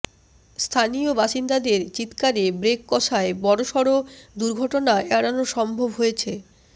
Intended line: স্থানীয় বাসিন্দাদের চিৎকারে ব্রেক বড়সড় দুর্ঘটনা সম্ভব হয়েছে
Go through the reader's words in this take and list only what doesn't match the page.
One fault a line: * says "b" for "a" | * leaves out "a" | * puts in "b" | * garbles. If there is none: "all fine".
* puts in "কষায়"
* puts in "এড়ানো"